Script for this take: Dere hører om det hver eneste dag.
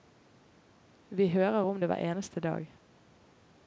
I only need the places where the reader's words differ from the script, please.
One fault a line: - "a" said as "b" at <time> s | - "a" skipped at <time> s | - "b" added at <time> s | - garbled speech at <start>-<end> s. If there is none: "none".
- "Dere" said as "Vi" at 1.1 s